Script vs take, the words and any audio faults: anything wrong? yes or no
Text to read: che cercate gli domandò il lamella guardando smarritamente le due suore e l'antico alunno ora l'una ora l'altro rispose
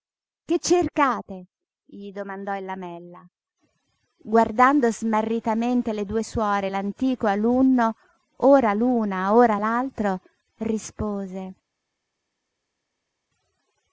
no